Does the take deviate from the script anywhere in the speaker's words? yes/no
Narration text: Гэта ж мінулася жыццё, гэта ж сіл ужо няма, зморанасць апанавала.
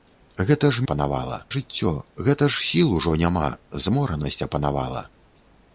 yes